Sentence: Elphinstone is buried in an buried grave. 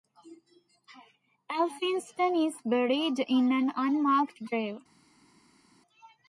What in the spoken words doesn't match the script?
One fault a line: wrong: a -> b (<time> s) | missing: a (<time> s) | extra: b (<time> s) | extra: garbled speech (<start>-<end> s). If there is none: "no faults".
wrong: buried -> unmarked (3.8 s)